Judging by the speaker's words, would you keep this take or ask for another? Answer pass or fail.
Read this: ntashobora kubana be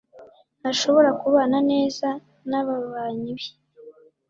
fail